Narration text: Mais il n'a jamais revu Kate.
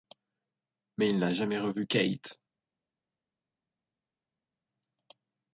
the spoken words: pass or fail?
pass